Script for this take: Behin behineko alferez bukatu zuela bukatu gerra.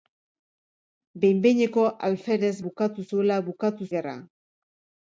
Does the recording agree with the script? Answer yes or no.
yes